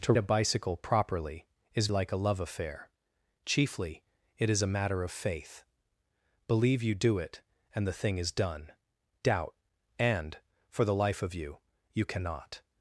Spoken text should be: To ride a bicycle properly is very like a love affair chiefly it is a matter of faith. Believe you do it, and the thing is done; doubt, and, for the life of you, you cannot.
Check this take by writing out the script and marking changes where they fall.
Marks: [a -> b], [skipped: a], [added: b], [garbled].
To [skipped: ride] a bicycle properly is [skipped: very] like a love affair chiefly it is a matter of faith. Believe you do it, and the thing is done; doubt, and, for the life of you, you cannot.